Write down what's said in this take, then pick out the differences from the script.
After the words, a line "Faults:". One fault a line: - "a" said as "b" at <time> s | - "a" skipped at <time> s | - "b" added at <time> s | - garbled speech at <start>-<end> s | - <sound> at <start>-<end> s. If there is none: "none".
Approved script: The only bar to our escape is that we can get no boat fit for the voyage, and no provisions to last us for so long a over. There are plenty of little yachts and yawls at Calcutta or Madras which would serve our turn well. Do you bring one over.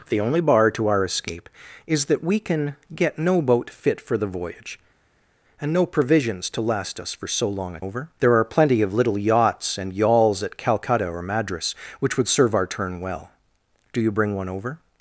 The only bar to our escape is that we can get no boat fit for the voyage, and no provisions to last us for so long a over. There are plenty of little yachts and yawls at Calcutta or Madras which would serve our turn well. Do you bring one over.
Faults:
none